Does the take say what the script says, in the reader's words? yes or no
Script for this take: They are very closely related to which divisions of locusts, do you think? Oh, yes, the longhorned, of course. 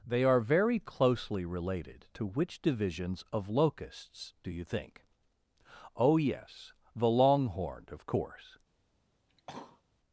yes